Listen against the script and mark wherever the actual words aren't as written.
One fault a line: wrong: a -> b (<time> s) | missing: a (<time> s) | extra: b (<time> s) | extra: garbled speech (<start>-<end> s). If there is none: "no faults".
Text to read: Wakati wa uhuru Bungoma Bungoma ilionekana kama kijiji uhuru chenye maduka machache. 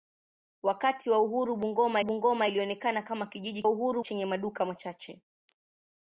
no faults